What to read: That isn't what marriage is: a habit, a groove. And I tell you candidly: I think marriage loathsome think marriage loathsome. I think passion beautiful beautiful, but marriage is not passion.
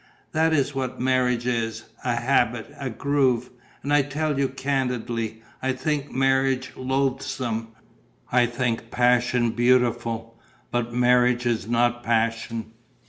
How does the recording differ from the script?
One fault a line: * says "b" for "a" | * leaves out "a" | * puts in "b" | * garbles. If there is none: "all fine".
* says "is" for "isn't"
* leaves out "think marriage loathsome"
* leaves out "beautiful"